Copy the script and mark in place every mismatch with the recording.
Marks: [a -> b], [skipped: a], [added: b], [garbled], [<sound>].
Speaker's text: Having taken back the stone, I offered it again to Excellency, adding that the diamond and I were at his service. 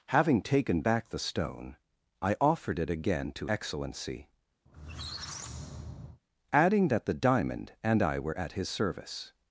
Having taken back the stone, I offered it again to Excellency, [squeak] adding that the diamond and I were at his service.